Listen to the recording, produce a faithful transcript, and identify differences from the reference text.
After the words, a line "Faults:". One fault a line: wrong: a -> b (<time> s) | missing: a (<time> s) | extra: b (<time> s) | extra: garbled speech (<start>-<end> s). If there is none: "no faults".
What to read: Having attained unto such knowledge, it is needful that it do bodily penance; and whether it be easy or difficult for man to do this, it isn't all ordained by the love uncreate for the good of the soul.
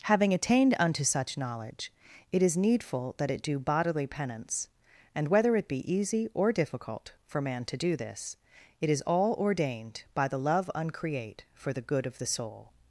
Having attained unto such knowledge, it is needful that it do bodily penance; and whether it be easy or difficult for man to do this, it is all ordained by the love uncreate for the good of the soul.
Faults:
wrong: isn't -> is (8.9 s)